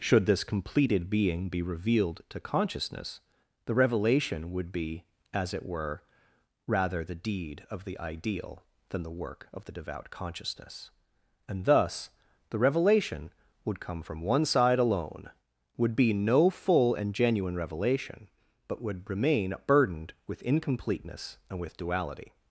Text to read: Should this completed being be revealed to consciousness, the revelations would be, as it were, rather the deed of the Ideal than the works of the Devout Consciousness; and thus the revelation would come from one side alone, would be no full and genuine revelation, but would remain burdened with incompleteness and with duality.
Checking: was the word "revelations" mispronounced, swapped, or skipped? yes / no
yes